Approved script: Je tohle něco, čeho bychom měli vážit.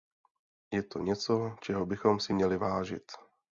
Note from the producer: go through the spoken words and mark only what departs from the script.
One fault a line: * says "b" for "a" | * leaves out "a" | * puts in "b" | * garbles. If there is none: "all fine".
* says "to" for "tohle"
* puts in "si"